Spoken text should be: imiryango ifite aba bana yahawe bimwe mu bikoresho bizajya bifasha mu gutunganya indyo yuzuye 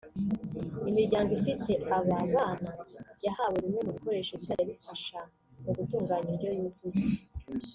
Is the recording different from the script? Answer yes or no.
no